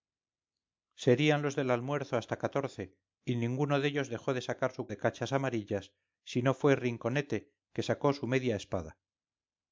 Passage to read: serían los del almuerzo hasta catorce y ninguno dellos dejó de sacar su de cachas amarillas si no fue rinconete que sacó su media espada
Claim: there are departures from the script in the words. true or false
false